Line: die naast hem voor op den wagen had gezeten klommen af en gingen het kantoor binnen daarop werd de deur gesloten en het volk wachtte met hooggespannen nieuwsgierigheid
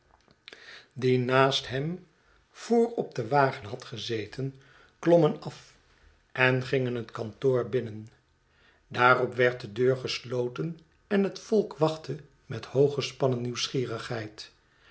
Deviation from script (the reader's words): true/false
false